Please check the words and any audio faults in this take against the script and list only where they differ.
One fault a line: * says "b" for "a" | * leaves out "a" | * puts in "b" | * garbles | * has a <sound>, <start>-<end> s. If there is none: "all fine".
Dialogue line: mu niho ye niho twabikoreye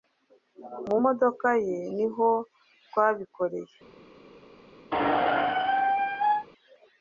* says "modoka" for "niho"
* has a squeak, 4.9-6.5 s